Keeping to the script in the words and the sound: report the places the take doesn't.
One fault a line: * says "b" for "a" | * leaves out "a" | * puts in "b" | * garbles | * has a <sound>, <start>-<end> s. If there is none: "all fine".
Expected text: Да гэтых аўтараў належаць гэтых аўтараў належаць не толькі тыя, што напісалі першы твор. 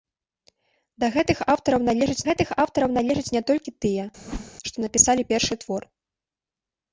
* has a whoosh, 4.2-4.5 s